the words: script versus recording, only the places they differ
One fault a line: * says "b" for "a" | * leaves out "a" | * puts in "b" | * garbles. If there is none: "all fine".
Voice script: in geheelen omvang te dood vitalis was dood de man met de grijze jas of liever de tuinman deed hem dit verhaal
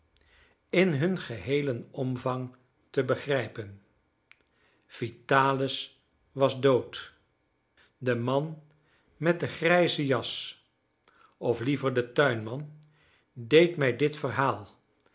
* puts in "hun"
* says "begrijpen" for "dood"
* says "mij" for "hem"